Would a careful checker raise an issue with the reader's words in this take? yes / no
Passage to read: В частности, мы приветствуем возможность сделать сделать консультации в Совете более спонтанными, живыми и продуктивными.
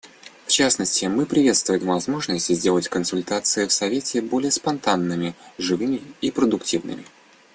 yes